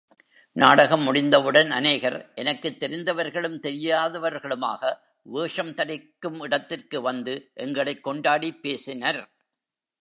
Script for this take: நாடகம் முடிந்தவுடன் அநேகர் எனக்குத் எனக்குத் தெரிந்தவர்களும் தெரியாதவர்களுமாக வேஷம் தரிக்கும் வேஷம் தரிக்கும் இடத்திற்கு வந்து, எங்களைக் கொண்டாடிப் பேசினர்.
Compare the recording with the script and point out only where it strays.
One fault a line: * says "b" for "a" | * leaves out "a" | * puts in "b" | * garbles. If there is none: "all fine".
* leaves out "எனக்குத்"
* leaves out "வேஷம் தரிக்கும்"